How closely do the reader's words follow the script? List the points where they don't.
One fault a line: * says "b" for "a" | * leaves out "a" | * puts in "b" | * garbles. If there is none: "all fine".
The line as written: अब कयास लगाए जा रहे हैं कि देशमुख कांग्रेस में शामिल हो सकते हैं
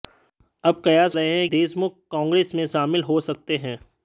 * leaves out "लगाए जा"
* leaves out "कि"